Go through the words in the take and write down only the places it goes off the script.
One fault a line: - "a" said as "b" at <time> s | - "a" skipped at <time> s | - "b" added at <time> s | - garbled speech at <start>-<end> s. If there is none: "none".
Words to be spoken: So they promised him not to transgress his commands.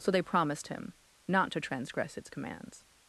- "his" said as "its" at 2.2 s